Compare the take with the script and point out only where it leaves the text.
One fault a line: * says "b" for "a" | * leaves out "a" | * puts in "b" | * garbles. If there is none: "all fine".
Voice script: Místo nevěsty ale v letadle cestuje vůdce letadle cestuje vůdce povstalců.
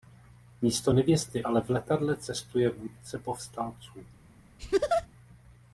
* leaves out "letadle cestuje vůdce"